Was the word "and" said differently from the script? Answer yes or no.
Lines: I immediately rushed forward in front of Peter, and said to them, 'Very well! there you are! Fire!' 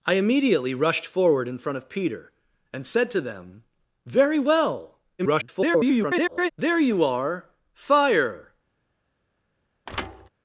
no